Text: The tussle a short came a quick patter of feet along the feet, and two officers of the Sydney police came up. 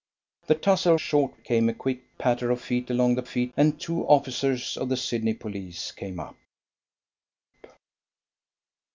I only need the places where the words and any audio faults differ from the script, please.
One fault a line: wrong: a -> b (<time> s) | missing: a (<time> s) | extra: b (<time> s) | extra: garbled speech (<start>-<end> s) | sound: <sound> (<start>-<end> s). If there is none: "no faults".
no faults